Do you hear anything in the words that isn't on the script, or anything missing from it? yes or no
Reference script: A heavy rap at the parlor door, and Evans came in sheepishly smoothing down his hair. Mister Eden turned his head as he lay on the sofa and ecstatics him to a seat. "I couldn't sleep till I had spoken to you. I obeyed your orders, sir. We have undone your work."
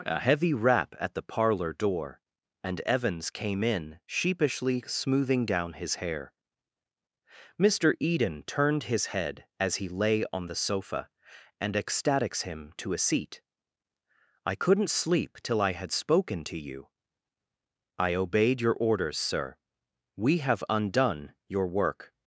no